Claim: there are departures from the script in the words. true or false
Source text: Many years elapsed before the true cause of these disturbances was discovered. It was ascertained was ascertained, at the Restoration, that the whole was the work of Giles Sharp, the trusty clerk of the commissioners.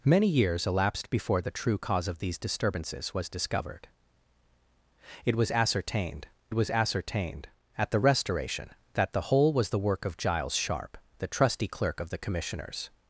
false